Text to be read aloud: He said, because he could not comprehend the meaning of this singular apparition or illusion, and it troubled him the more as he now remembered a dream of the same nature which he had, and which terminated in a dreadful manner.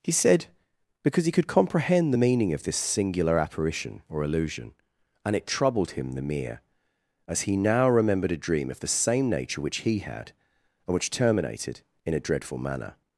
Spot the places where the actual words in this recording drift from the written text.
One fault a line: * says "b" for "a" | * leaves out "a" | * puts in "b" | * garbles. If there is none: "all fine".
* leaves out "not"
* says "mere" for "more"